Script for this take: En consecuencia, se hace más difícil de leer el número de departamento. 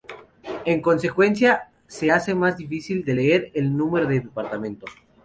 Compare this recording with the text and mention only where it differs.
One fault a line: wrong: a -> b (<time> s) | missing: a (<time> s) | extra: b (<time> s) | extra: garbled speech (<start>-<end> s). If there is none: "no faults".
no faults